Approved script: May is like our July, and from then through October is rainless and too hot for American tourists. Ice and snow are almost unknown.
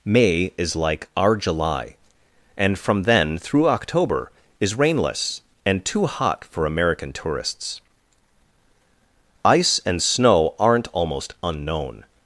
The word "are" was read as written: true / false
false